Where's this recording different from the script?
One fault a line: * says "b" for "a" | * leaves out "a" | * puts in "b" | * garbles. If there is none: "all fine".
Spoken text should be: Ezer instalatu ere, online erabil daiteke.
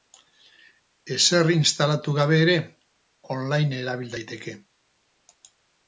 * puts in "gabe"